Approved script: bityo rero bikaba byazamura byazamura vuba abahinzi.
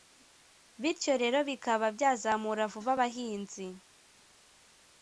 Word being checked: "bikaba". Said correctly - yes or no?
yes